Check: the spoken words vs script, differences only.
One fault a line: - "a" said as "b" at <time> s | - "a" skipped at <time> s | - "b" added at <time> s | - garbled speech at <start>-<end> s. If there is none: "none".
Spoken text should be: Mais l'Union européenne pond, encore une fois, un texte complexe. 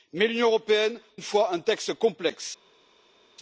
- "pond encore" skipped at 1.0 s